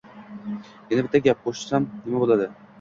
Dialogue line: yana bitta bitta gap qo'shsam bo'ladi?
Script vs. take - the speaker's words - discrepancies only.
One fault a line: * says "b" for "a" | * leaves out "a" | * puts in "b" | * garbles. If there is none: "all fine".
* leaves out "bitta"
* puts in "nima"